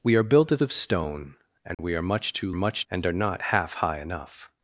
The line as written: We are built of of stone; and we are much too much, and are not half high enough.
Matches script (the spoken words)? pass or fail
pass